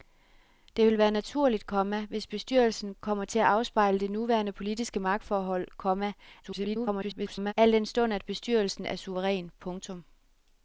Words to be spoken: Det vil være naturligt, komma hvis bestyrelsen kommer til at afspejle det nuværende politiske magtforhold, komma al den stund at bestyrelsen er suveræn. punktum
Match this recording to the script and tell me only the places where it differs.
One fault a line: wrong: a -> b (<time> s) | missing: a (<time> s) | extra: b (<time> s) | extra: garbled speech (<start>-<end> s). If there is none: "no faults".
extra: garbled speech (6.4-7.5 s)